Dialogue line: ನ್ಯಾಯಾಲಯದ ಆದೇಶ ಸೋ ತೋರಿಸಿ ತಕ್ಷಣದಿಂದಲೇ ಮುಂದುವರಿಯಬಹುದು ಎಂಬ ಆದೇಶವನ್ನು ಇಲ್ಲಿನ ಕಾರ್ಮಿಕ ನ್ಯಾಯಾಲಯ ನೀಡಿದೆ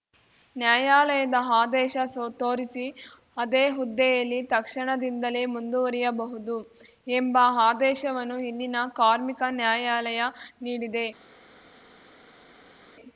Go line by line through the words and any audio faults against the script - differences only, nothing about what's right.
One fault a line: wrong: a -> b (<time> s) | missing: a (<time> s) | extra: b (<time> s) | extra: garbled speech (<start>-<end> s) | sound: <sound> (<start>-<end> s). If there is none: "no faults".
extra: ಅದೇ ಹುದ್ದೆಯಲ್ಲಿ (3.4 s)